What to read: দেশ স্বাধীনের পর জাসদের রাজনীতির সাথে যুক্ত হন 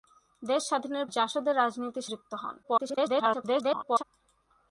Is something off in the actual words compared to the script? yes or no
yes